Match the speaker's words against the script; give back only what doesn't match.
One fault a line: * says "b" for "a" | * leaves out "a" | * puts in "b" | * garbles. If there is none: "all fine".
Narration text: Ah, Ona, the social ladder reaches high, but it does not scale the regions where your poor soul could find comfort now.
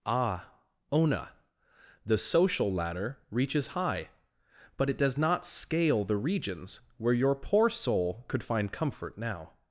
all fine